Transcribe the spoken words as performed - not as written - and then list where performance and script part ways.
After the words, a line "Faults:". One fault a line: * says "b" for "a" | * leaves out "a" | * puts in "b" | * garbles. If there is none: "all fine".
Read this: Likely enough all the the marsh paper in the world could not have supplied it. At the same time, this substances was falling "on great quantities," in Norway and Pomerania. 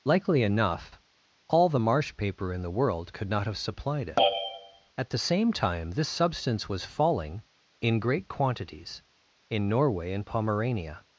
Likely enough all the marsh paper in the world could not have supplied it. At the same time, this substance was falling "in great quantities," in Norway and Pomerania.
Faults:
* leaves out "the"
* says "substance" for "substances"
* says "in" for "on"